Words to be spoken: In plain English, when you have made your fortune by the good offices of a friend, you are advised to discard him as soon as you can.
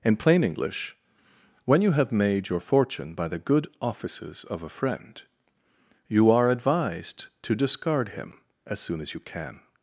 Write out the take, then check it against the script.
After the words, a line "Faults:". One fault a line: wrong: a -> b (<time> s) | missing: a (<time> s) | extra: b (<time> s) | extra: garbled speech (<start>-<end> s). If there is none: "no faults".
In plain English, when you have made your fortune by the good offices of a friend, you are advised to discard him as soon as you can.
Faults:
no faults